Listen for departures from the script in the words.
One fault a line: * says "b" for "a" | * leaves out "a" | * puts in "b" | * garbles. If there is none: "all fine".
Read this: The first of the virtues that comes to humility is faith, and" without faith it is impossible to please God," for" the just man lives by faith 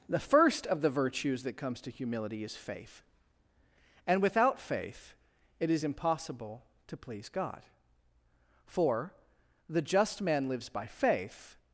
all fine